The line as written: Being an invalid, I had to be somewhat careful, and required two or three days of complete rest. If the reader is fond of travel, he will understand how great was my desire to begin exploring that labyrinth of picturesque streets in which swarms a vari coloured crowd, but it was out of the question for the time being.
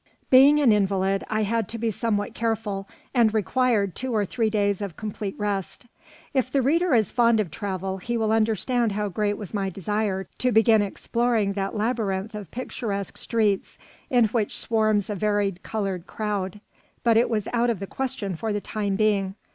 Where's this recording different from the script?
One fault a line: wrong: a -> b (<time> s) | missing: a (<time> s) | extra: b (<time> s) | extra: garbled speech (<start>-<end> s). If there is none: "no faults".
no faults